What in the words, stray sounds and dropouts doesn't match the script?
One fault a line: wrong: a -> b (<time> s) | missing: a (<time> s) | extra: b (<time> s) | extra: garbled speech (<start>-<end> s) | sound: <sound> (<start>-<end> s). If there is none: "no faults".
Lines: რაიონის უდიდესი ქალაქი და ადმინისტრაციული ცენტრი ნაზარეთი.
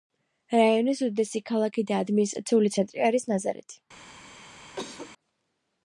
extra: არის (3.1 s)
sound: cough (4.8-5.1 s)